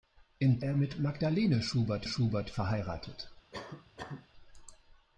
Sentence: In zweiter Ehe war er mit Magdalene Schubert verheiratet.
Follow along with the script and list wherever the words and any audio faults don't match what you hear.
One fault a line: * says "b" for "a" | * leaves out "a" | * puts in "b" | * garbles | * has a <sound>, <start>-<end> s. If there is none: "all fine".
* leaves out "zweiter Ehe war"
* puts in "Schubert"
* has a cough, 3.5-4.3 s